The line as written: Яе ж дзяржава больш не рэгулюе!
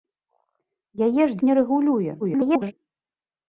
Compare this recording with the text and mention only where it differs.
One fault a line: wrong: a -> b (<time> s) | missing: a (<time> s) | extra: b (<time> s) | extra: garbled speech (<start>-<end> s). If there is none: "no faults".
missing: дзяржава больш (1.4 s)
extra: garbled speech (2.2-2.7 s)